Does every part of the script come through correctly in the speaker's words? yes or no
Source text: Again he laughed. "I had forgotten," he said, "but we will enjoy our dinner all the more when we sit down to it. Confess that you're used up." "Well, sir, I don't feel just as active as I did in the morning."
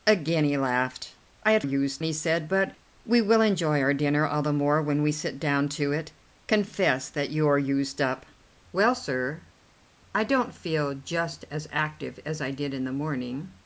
no